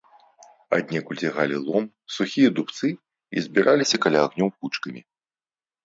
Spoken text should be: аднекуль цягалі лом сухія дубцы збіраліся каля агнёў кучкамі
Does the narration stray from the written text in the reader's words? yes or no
yes